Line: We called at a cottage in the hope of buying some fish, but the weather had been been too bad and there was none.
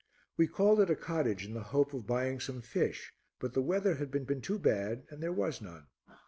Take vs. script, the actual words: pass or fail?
pass